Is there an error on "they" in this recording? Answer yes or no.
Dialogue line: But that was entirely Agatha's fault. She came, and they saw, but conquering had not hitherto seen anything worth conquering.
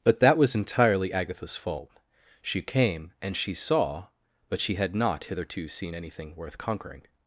yes